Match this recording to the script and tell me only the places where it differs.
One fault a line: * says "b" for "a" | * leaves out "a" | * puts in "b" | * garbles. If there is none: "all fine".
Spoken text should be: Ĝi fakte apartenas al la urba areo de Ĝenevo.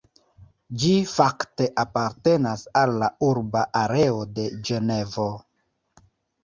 all fine